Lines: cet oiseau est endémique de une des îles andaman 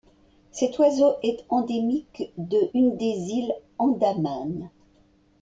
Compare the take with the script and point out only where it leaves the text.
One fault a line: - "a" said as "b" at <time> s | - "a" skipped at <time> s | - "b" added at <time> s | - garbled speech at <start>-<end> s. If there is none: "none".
none